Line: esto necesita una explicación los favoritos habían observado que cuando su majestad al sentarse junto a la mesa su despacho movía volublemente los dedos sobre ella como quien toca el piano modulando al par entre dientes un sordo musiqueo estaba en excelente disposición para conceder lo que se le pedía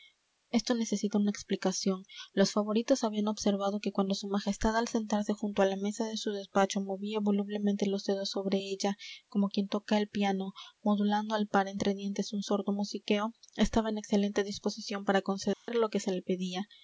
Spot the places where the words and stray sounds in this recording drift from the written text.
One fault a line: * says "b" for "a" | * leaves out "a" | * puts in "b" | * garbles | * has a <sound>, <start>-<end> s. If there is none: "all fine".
* puts in "de"
* has a dropout, 15.5-15.7 s